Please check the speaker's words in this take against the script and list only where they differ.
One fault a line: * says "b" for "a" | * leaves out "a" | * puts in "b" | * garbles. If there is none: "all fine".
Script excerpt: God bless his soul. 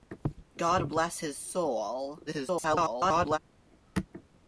* garbles